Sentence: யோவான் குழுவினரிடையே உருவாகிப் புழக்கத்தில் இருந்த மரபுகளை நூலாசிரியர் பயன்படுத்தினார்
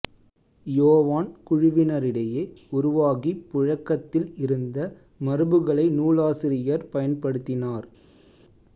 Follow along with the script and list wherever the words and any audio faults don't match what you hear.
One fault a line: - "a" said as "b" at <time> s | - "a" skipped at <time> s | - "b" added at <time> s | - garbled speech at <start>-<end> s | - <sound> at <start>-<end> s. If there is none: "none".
none